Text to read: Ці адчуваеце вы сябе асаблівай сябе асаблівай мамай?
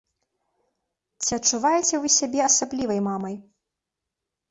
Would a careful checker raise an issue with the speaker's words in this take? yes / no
yes